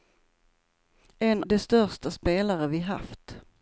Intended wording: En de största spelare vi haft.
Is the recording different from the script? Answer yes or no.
no